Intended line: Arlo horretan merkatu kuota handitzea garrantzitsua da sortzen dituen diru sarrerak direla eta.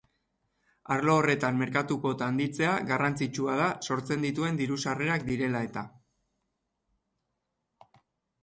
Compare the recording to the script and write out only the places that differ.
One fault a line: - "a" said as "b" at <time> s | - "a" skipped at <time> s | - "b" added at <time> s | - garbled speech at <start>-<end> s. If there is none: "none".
none